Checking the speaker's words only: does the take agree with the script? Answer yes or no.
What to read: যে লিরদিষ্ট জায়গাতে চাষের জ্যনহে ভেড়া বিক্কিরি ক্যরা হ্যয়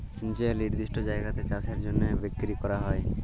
no